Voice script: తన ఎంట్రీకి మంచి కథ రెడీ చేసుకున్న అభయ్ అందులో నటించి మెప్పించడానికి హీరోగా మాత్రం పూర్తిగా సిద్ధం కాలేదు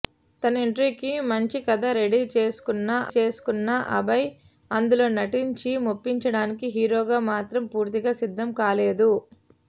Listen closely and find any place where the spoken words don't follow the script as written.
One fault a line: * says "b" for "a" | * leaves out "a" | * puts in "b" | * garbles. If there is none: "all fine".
* puts in "చేసుకున్న"